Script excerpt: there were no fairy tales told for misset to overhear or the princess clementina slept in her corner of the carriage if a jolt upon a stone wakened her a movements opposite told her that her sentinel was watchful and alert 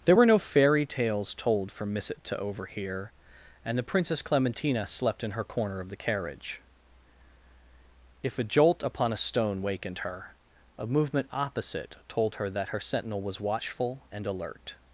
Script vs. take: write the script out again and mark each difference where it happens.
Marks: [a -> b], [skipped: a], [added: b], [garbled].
there were no fairy tales told for misset to overhear [or -> and] the princess clementina slept in her corner of the carriage if a jolt upon a stone wakened her a [movements -> movement] opposite told her that her sentinel was watchful and alert